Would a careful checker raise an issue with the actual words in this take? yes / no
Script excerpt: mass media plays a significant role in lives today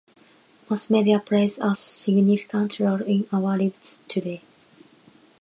yes